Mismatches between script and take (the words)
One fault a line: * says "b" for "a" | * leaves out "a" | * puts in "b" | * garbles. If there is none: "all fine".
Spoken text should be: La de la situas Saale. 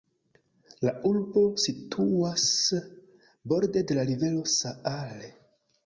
* puts in "urbo situas borde"
* says "rivero" for "situas"